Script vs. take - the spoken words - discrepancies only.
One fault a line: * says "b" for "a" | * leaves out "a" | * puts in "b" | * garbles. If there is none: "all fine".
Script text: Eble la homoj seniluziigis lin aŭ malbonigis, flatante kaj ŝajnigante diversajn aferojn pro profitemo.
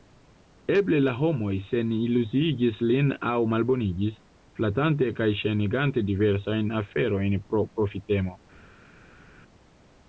all fine